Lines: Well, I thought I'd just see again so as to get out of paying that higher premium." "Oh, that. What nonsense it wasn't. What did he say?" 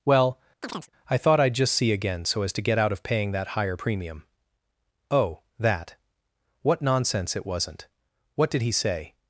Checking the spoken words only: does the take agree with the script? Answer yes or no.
yes